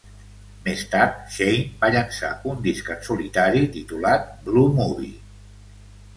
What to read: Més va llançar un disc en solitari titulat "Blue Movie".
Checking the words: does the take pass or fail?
fail